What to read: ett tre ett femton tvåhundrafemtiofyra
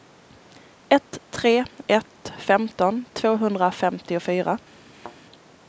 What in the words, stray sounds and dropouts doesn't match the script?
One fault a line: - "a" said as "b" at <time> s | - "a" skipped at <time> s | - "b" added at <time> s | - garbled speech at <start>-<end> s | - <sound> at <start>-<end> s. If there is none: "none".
- thud at 4.9-5.2 s